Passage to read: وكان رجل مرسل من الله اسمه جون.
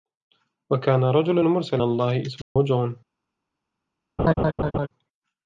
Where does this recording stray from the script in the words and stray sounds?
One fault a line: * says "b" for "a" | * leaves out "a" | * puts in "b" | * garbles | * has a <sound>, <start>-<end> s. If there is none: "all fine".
* leaves out "من"
* has a dropout, 2.4-2.6 s
* has a laugh, 4.2-4.9 s